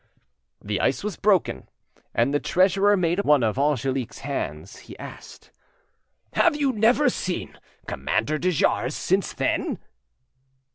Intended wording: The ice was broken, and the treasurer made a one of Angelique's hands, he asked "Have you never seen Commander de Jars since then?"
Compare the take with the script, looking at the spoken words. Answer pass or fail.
pass